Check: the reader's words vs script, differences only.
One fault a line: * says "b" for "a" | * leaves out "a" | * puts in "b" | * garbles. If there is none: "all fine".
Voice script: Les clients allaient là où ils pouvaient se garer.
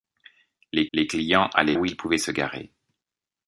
* puts in "les"
* leaves out "là"